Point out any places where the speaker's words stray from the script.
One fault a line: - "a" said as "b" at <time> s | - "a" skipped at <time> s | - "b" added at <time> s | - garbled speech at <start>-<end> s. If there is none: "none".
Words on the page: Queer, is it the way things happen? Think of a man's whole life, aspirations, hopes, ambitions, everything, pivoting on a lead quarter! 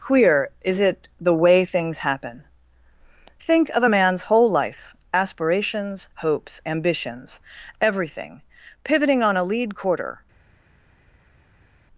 none